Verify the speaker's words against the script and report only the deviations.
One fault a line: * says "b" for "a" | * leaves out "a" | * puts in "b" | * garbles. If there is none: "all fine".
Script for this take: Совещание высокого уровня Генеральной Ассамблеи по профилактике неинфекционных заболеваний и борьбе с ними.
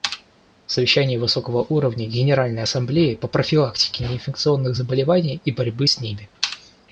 all fine